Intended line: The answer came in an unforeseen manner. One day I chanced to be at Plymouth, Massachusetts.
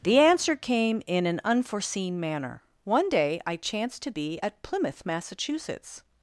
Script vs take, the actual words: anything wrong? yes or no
no